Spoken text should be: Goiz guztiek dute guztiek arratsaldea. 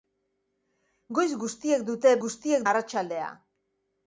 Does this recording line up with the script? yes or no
yes